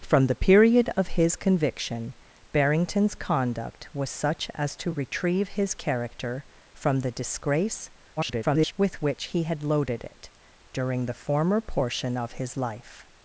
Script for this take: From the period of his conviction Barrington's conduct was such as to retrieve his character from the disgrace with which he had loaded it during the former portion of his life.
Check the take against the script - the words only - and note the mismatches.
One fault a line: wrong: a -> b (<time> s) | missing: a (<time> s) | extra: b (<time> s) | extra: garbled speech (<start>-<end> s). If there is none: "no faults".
extra: garbled speech (8.2-8.7 s)